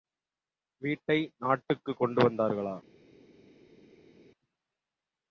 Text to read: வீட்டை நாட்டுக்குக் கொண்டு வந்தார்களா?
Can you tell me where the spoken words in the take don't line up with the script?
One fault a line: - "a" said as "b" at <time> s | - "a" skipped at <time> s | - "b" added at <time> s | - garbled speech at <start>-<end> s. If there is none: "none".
none